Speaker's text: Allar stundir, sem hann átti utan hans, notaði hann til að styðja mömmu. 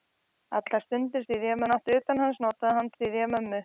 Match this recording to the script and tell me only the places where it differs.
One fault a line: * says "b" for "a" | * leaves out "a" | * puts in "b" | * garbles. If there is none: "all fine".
* says "styðja" for "sem"
* leaves out "til"